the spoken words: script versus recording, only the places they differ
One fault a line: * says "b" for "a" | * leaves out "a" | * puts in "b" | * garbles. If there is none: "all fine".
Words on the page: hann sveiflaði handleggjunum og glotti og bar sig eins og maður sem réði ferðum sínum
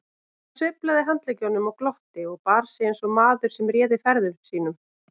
all fine